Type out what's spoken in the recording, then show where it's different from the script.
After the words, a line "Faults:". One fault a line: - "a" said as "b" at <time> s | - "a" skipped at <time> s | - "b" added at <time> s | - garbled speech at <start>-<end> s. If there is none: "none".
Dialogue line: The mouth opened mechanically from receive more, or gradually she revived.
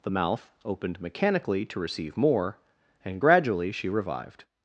The mouth opened mechanically to receive more, and gradually she revived.
Faults:
- "from" said as "to" at 1.7 s
- "or" said as "and" at 3.0 s